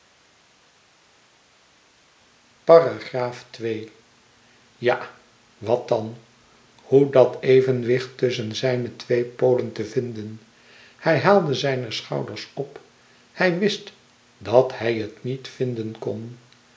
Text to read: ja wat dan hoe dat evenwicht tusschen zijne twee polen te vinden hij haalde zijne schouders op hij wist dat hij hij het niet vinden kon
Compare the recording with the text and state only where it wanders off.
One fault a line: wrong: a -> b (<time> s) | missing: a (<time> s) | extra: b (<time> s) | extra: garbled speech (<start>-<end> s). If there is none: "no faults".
missing: hij (14.9 s)